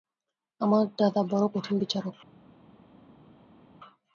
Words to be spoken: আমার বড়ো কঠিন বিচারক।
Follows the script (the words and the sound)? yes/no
no